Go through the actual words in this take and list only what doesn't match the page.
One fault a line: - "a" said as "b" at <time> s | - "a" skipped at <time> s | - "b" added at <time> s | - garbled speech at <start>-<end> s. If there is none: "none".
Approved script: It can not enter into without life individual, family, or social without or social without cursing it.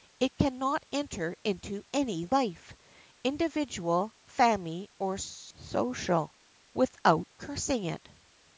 - "without" said as "any" at 1.9 s
- "or social without" skipped at 7.3 s